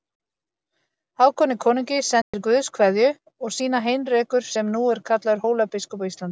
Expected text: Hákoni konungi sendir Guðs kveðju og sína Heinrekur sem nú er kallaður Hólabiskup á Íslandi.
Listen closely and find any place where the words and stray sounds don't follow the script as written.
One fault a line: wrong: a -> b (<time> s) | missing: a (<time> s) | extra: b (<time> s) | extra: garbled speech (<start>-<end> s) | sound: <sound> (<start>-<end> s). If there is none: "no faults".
sound: dropout (2.2-2.3 s)